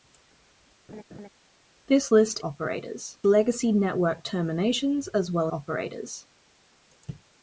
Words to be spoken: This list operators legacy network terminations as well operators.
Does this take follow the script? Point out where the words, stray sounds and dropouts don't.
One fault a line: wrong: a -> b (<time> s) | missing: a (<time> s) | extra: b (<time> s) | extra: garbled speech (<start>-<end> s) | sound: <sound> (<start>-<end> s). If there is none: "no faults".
sound: laugh (0.9-1.3 s)